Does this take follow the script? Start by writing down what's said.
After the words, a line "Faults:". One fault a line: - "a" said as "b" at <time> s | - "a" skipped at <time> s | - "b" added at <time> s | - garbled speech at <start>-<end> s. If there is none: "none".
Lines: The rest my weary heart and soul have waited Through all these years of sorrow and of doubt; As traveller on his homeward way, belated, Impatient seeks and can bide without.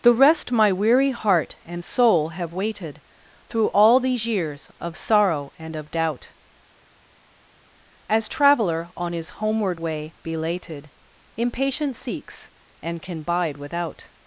The rest my weary heart and soul have waited Through all these years of sorrow and of doubt; As traveller on his homeward way, belated, Impatient seeks and can bide without.
Faults:
none